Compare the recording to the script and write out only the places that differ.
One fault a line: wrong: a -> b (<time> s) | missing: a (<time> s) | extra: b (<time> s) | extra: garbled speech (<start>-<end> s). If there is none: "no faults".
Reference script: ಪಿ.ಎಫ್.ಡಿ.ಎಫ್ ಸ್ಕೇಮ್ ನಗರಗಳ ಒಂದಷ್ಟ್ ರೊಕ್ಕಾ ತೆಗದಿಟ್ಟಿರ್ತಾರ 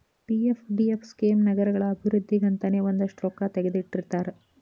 extra: ಅಭಿವೃದ್ಧಿಗಂತನೇ (1.9 s)